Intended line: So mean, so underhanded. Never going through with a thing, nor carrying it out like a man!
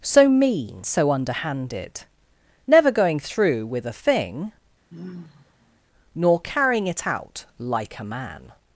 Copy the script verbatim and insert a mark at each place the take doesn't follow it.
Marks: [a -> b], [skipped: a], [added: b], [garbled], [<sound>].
So mean, so underhanded. Never going through with a thing, [sigh] nor carrying it out like a man!